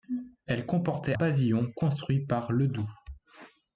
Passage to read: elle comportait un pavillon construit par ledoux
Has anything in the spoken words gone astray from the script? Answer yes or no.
yes